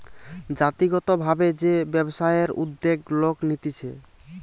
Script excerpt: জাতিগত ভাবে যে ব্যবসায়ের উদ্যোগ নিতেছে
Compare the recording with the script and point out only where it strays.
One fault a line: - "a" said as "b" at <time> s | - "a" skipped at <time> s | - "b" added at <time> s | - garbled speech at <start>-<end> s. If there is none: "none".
- "লোক" added at 3.2 s